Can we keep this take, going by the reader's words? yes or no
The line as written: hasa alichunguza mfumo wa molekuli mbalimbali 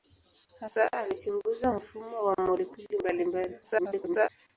no